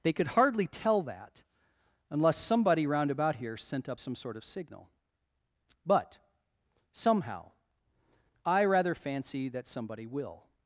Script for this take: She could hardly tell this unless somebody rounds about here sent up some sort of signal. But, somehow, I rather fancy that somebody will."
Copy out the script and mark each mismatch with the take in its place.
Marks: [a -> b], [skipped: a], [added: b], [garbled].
[She -> They] could hardly tell [this -> that] unless somebody [rounds -> round] about here sent up some sort of signal. But, somehow, I rather fancy that somebody will."